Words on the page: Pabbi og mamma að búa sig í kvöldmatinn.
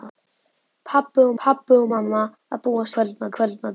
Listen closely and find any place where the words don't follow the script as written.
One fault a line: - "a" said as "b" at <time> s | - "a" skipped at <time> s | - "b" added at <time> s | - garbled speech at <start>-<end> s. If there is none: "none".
- "pabbi og" added at 1.4 s
- "sig" said as "kvöldmatinn" at 3.0 s